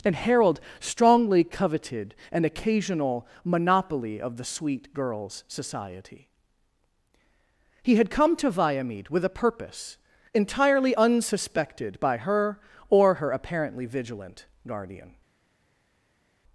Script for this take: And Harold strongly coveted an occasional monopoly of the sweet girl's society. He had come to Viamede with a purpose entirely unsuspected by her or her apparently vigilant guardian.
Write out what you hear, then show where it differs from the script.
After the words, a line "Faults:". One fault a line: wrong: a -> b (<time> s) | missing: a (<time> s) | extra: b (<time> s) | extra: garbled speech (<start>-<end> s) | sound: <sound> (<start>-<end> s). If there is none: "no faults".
And Harold strongly coveted an occasional monopoly of the sweet girl's society. He had come to Viamede with a purpose entirely unsuspected by her or her apparently vigilant guardian.
Faults:
no faults